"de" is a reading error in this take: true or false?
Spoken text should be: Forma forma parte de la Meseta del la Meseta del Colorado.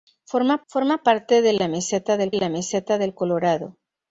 false